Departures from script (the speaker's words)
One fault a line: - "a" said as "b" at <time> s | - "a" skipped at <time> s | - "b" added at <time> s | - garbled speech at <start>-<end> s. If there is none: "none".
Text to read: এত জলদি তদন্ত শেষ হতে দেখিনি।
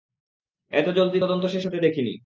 none